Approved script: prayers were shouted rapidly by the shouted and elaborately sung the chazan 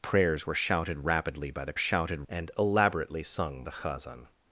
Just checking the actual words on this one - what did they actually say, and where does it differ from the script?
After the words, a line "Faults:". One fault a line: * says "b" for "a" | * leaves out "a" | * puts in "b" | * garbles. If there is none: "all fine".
prayers were shouted rapidly by the shouted and elaborately sung the chazan
Faults:
all fine